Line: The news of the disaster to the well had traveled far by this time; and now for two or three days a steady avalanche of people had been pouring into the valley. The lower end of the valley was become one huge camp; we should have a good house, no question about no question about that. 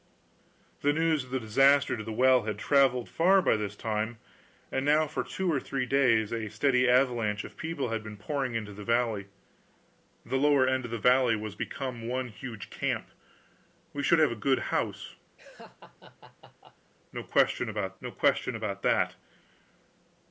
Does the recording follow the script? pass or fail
pass